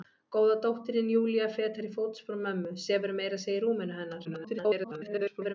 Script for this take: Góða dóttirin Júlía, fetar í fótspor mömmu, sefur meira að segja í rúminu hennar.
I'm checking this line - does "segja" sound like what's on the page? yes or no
yes